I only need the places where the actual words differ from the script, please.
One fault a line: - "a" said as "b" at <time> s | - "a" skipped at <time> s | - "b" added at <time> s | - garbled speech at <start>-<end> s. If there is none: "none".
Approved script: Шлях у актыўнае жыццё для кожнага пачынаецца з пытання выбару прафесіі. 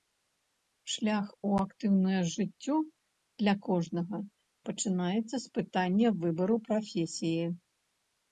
none